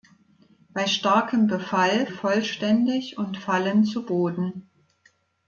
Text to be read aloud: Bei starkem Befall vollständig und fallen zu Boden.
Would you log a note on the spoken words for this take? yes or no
no